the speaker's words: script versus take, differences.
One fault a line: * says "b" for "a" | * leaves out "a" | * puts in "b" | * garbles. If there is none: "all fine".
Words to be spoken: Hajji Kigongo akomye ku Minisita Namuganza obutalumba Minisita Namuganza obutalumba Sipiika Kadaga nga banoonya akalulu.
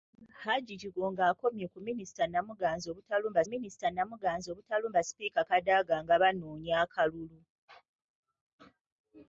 all fine